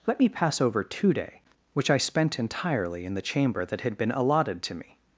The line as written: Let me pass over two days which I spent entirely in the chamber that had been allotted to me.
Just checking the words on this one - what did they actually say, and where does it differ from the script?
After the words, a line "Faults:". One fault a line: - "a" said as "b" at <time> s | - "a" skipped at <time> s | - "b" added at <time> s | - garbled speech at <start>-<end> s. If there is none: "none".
Let me pass over two day which I spent entirely in the chamber that had been allotted to me.
Faults:
- "days" said as "day" at 1.1 s